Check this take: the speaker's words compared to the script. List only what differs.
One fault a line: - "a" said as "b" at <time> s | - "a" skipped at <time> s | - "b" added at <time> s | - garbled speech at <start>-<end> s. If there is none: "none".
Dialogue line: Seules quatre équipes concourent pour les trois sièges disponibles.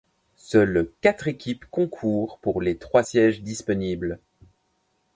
none